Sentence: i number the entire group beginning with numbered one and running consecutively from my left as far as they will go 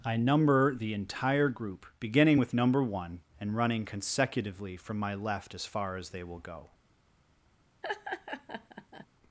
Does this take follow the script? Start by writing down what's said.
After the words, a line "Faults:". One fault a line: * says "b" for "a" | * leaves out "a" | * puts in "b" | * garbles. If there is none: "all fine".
i number the entire group beginning with number one and running consecutively from my left as far as they will go
Faults:
* says "number" for "numbered"